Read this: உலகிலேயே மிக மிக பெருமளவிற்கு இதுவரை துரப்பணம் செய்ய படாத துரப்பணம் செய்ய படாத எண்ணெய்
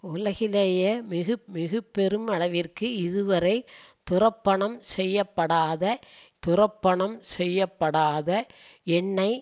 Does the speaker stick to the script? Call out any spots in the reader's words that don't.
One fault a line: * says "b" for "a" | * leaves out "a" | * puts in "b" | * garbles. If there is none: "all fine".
all fine